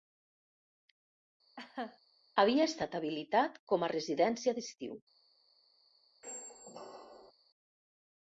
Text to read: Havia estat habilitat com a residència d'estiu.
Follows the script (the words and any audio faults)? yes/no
no